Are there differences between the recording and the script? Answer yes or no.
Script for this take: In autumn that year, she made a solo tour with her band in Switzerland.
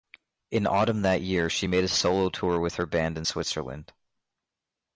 no